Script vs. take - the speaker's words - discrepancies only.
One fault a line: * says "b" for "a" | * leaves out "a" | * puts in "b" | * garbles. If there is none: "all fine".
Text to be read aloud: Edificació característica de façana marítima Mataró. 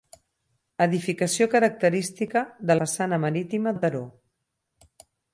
all fine